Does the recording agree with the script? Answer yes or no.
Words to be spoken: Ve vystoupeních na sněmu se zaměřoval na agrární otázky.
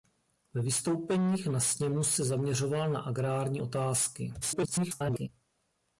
no